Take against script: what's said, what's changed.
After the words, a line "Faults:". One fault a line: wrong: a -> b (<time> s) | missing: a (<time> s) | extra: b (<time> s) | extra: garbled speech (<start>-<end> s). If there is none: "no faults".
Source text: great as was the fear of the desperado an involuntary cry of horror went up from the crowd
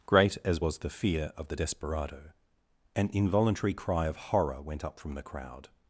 great as was the fear of the desperado an involuntary cry of horror went up from the crowd
Faults:
no faults